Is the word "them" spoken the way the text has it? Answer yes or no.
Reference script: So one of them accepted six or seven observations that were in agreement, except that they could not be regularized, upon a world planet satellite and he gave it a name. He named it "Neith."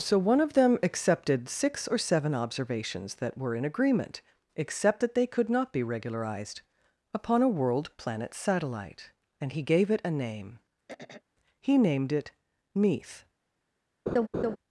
yes